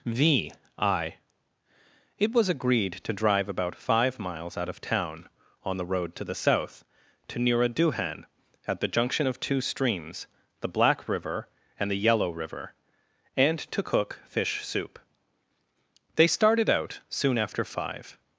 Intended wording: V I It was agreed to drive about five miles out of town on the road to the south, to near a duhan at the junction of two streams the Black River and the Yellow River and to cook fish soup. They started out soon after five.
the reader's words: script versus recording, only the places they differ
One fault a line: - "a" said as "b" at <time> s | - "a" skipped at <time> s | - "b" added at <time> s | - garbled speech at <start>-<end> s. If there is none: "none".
none